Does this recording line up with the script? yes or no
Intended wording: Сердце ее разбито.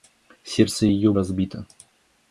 yes